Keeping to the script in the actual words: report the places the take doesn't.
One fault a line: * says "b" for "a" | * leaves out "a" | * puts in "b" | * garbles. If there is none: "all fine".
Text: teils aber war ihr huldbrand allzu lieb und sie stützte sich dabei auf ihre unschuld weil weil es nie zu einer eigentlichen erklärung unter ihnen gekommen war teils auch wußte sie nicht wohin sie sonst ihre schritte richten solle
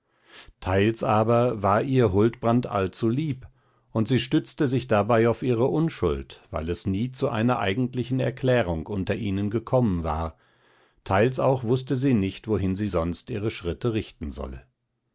* leaves out "weil"